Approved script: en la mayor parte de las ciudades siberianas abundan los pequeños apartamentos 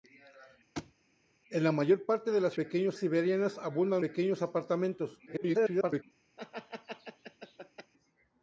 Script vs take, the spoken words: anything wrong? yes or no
yes